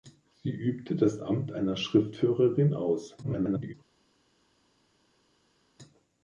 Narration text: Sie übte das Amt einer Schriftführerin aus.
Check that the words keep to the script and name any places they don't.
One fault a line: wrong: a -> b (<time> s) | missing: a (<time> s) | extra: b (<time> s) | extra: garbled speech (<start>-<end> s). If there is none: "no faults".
extra: garbled speech (3.2-3.7 s)